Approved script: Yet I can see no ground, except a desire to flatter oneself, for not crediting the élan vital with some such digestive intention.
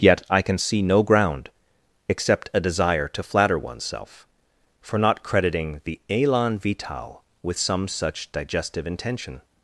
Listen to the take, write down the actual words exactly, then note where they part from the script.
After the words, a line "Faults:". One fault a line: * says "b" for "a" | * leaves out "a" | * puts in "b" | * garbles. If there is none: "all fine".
Yet I can see no ground, except a desire to flatter oneself, for not crediting the élan vital with some such digestive intention.
Faults:
all fine